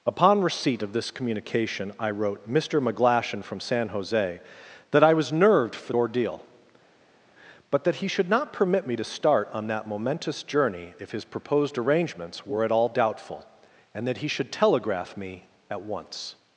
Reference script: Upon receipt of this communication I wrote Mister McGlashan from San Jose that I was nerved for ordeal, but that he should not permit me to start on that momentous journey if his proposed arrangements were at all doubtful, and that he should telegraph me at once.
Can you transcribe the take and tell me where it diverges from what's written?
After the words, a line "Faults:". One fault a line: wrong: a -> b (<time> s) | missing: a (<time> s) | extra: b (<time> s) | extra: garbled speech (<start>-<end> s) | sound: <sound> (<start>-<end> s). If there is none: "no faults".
Upon receipt of this communication I wrote Mister McGlashan from San Jose that I was nerved for ordeal, but that he should not permit me to start on that momentous journey if his proposed arrangements were at all doubtful, and that he should telegraph me at once.
Faults:
no faults